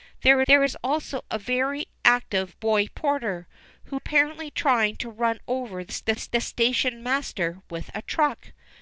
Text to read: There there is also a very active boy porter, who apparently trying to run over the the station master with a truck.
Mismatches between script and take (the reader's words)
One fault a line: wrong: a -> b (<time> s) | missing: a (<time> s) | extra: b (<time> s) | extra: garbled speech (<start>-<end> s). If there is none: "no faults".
no faults